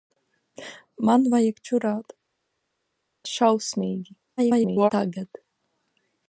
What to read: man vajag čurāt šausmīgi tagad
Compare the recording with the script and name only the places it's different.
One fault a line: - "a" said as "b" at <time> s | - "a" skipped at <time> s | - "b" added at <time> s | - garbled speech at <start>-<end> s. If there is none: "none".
- garbled speech at 4.4-4.9 s